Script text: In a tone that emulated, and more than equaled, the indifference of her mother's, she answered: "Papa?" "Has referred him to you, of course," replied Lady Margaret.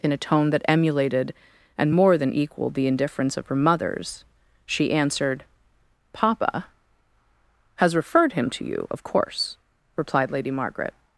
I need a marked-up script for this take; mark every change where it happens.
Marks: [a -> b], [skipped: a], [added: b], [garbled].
In a tone that emulated, and more than equaled, the indifference of her mother's, she answered: "Papa?" "Has referred him to you, of course," replied Lady Margaret.